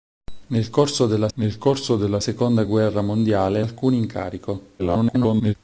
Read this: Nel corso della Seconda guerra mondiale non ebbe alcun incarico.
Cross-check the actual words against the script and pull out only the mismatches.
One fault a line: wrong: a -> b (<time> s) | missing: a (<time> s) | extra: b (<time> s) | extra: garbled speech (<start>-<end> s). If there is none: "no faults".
extra: nel corso della (1.3 s)
missing: non ebbe (3.6 s)
extra: garbled speech (4.8-5.5 s)